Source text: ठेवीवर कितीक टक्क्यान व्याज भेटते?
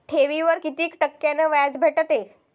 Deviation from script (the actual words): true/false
false